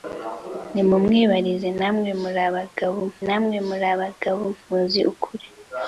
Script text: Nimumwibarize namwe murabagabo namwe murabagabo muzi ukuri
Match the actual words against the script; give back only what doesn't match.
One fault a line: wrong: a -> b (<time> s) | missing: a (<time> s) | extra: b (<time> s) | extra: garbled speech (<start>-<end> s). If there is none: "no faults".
no faults